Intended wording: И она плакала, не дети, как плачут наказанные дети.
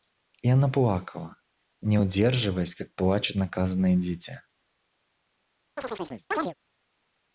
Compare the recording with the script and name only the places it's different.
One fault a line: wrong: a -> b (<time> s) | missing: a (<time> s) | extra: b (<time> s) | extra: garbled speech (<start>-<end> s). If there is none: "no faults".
wrong: дети -> удерживаясь (2.0 s)